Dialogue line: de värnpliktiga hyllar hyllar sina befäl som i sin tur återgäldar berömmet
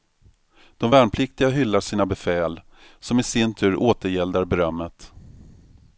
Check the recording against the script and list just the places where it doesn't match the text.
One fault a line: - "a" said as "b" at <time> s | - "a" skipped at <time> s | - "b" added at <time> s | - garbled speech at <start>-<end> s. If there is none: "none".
- "hyllar" skipped at 1.8 s